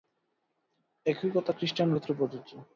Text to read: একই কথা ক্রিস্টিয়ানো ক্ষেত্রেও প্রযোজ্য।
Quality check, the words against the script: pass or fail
pass